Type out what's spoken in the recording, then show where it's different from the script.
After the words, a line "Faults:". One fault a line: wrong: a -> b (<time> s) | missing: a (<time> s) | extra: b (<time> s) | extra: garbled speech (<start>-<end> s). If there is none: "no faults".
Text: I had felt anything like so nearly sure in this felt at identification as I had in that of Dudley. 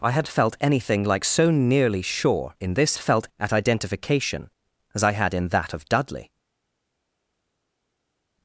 I had felt anything like so nearly sure in this felt at identification as I had in that of Dudley.
Faults:
no faults